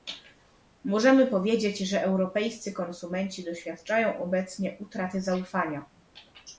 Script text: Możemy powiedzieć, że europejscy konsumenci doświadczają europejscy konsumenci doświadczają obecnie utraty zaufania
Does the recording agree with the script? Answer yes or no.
no